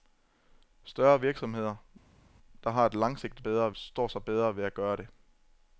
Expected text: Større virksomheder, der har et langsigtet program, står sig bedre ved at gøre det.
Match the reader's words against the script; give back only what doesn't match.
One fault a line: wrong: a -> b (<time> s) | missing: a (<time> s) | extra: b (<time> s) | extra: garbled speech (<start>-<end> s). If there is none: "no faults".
wrong: program -> bedre (3.4 s)